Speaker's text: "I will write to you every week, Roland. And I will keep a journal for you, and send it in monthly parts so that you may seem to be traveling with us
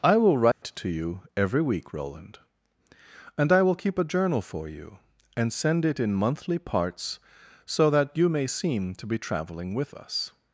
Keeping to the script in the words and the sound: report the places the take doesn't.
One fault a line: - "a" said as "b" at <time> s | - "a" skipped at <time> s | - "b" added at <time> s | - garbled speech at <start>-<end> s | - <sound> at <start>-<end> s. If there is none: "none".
- dropout at 0.5-0.6 s